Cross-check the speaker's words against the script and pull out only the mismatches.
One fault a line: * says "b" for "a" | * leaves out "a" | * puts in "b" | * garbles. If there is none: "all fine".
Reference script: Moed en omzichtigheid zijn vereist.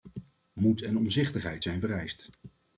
all fine